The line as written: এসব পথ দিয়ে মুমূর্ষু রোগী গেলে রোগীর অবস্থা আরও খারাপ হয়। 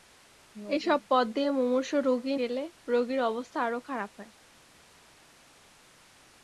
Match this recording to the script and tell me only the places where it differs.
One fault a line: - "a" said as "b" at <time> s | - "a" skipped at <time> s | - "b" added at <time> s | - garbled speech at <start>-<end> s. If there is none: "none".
none